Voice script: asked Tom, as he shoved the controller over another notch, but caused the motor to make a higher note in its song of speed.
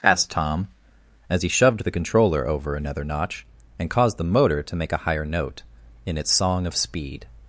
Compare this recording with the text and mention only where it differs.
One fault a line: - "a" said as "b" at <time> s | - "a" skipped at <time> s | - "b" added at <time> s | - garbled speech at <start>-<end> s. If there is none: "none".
- "but" said as "and" at 3.8 s